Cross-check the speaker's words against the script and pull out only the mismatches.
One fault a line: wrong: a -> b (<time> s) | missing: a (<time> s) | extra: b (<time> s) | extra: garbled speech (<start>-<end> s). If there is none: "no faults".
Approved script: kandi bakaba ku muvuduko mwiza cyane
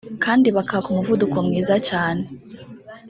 no faults